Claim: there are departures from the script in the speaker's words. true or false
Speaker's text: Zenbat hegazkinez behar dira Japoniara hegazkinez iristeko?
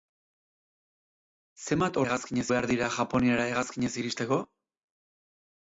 false